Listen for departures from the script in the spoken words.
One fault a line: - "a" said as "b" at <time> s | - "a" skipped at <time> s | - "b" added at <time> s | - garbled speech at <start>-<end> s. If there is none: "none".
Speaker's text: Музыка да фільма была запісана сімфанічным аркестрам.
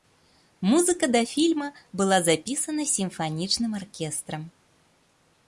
none